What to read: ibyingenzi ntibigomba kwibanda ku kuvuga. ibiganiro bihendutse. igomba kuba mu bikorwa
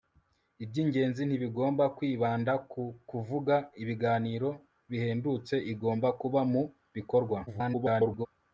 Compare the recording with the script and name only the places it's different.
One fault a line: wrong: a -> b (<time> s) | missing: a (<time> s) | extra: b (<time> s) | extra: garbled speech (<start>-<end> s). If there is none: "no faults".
extra: garbled speech (7.5-8.3 s)